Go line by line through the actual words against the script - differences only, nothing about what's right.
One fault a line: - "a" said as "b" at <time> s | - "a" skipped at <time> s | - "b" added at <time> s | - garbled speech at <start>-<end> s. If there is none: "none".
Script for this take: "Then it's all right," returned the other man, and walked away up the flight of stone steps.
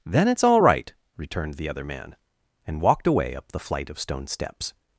none